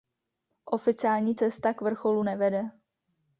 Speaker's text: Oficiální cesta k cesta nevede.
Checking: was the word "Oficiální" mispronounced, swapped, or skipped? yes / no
no